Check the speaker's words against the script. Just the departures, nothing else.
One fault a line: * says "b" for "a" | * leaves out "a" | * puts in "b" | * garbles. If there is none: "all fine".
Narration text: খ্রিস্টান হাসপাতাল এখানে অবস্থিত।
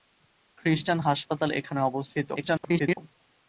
* garbles